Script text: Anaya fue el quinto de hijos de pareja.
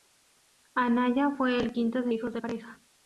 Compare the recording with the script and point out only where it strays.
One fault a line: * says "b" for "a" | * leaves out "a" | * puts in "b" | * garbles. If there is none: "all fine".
all fine